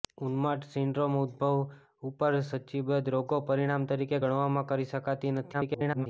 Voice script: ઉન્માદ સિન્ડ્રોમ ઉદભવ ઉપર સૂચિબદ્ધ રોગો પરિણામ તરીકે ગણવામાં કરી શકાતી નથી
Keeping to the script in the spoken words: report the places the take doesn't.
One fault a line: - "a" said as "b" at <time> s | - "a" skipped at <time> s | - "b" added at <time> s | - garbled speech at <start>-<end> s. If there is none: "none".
- garbled speech at 5.5-6.1 s